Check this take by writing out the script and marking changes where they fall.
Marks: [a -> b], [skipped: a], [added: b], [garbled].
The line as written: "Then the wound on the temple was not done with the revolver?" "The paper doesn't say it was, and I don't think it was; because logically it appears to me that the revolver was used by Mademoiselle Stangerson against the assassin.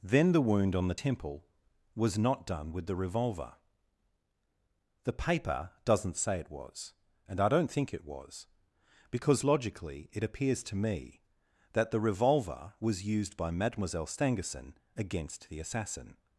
"Then the wound on the temple was not done with the revolver?" "The paper doesn't say it was, and I don't think it was; because logically it appears to me that the revolver was used by Mademoiselle Stangerson against the assassin.